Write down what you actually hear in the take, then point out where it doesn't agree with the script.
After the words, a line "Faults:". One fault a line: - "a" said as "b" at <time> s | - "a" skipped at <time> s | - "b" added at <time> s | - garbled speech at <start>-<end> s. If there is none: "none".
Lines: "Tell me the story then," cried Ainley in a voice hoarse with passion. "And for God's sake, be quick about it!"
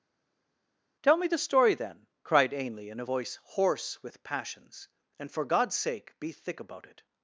"Tell me the story then," cried Ainley in a voice hoarse with passions. "And for God's sake, be thick about it!"
Faults:
- "passion" said as "passions" at 4.2 s
- "quick" said as "thick" at 6.3 s